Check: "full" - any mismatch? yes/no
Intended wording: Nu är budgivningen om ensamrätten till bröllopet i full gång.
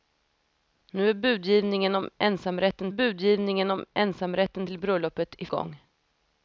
yes